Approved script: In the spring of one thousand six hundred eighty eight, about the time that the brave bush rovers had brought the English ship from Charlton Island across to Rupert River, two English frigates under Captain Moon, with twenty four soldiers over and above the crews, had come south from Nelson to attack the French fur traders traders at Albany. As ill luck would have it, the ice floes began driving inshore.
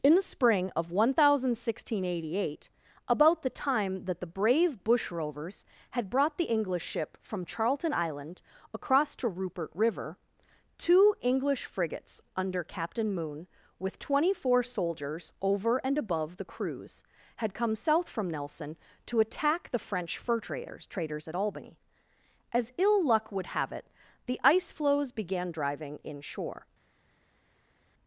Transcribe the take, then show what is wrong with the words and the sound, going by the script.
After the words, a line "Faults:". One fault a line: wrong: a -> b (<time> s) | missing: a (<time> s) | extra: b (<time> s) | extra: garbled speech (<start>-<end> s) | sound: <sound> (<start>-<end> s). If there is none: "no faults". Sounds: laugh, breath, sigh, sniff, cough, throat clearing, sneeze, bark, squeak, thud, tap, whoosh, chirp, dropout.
In the spring of one thousand six hundred eighty eight, about the time that the brave bush rovers had brought the English ship from Charlton Island across to Rupert River, two English frigates under Captain Moon, with twenty four soldiers over and above the crews, had come south from Nelson to attack the French fur traders traders at Albany. As ill luck would have it, the ice floes began driving inshore.
Faults:
no faults